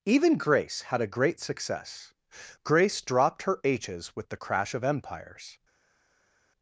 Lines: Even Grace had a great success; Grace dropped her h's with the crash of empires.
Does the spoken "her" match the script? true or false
true